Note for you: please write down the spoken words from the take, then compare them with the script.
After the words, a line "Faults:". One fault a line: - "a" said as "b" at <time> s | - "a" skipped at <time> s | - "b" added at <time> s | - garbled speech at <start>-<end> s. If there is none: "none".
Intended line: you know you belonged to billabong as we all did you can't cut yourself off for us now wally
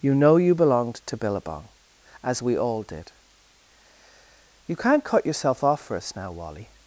you know you belonged to billabong as we all did you can't cut yourself off for us now wally
Faults:
none